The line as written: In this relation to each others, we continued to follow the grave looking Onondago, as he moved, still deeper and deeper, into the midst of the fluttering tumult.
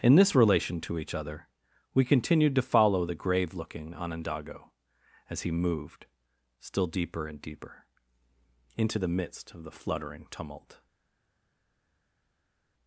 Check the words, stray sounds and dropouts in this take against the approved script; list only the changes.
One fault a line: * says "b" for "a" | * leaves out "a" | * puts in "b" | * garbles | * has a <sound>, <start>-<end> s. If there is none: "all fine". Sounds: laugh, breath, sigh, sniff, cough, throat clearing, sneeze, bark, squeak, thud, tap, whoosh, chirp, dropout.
* says "other" for "others"